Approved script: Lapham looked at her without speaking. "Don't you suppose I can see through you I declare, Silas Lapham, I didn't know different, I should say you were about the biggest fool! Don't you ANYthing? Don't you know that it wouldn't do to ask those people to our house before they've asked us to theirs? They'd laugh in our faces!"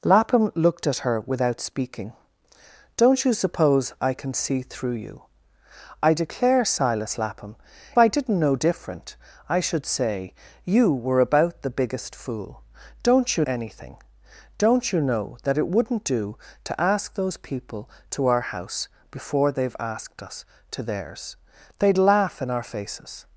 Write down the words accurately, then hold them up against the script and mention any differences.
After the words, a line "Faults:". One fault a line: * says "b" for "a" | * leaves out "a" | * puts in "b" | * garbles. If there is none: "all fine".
Lapham looked at her without speaking. "Don't you suppose I can see through you I declare, Silas Lapham, I didn't know different, I should say you were about the biggest fool! Don't you ANYthing? Don't you know that it wouldn't do to ask those people to our house before they've asked us to theirs? They'd laugh in our faces!"
Faults:
all fine